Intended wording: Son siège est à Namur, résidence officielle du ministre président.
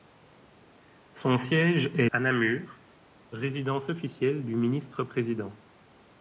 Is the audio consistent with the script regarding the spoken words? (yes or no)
yes